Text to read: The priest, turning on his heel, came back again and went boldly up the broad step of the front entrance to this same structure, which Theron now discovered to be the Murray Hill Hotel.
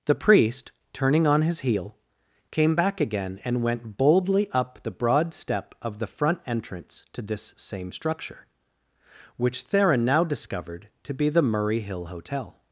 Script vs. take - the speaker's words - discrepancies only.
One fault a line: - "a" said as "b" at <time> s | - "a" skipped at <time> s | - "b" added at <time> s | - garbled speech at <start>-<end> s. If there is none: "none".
none